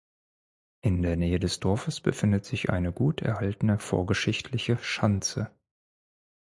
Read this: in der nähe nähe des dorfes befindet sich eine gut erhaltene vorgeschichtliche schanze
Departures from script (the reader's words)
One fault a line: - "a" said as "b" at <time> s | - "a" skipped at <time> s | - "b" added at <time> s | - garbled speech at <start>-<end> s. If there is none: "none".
- "nähe" skipped at 1.4 s